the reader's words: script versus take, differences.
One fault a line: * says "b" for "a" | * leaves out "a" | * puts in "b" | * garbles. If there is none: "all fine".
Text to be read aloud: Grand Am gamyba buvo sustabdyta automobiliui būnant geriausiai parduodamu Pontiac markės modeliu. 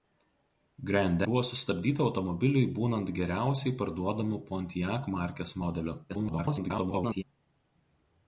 * leaves out "Am gamyba"
* garbles